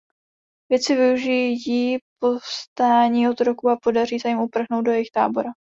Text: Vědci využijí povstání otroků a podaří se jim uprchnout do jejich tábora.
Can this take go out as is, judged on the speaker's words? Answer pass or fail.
pass